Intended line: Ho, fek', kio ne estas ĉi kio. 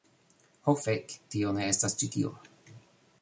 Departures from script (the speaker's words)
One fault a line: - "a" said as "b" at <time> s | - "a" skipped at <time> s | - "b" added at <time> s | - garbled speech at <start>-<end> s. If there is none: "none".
- "kio" said as "tio" at 1.3 s
- "kio" said as "tio" at 2.2 s